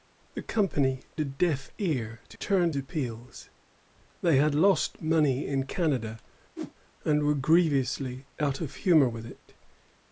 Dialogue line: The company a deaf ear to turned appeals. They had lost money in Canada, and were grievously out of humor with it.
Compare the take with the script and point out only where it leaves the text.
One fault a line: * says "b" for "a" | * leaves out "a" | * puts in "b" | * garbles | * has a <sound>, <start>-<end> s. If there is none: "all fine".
* has a whoosh, 6.6-6.7 s